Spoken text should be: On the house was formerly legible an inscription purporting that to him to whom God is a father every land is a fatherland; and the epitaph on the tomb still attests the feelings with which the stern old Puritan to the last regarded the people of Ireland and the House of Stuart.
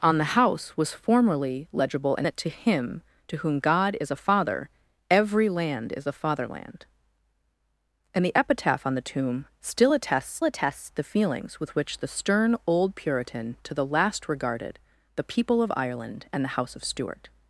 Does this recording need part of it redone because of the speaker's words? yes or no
yes